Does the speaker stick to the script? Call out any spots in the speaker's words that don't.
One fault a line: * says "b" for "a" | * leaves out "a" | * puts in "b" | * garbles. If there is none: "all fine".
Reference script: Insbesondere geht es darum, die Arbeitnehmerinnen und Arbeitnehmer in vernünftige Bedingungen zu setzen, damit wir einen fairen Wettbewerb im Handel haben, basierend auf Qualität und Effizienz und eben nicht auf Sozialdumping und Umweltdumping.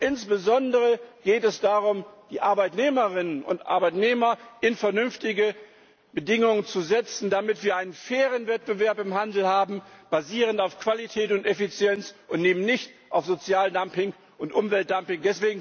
all fine